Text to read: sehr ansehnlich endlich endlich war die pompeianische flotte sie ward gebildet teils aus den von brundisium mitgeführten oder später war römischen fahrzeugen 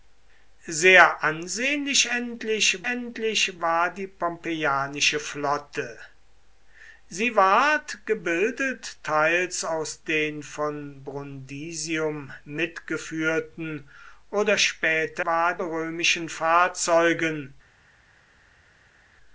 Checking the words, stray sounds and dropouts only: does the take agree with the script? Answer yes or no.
yes